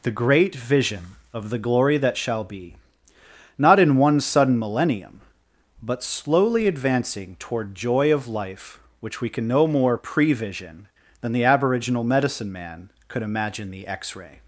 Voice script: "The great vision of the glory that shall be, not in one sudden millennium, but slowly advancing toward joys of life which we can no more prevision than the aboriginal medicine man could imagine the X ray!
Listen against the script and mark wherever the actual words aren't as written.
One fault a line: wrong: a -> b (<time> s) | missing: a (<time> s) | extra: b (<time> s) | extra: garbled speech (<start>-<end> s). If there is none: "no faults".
wrong: joys -> joy (7.8 s)